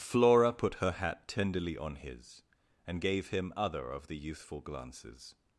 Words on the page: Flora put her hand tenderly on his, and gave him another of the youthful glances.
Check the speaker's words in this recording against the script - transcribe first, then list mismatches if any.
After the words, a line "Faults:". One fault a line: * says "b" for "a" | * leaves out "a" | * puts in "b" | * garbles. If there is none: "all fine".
Flora put her hat tenderly on his, and gave him other of the youthful glances.
Faults:
* says "hat" for "hand"
* says "other" for "another"